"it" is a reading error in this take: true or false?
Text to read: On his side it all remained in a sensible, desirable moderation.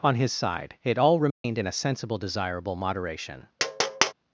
false